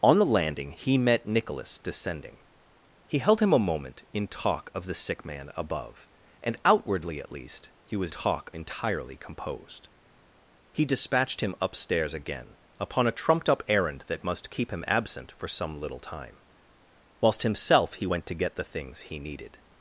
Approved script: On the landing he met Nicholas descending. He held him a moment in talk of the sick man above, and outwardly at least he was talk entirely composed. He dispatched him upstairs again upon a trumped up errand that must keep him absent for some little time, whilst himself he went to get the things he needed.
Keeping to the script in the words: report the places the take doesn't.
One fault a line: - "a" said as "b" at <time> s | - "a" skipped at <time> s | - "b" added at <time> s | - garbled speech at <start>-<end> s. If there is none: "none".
none